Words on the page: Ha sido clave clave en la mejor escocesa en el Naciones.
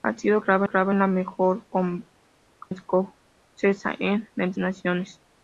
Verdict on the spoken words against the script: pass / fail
pass